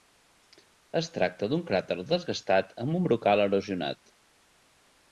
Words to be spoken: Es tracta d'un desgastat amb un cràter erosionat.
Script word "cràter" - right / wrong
wrong